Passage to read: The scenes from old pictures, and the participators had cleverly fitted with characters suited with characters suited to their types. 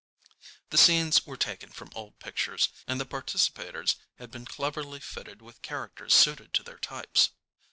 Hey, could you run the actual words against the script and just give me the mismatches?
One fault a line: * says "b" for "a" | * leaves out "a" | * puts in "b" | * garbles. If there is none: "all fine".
* puts in "were taken"
* puts in "been"
* leaves out "with characters suited"